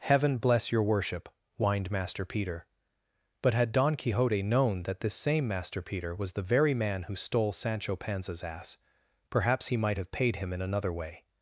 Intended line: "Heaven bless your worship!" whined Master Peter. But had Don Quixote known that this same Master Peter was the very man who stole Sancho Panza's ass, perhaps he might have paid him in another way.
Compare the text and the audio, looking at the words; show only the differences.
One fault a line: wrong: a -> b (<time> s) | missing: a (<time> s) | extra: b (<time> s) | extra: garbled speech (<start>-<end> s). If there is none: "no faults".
no faults